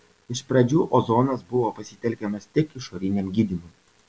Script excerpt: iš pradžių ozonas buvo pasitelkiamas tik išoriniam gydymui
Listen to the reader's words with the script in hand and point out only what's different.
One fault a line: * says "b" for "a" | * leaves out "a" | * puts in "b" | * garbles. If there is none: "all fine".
all fine